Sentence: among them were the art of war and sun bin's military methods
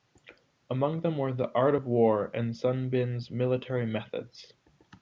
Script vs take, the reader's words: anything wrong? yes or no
no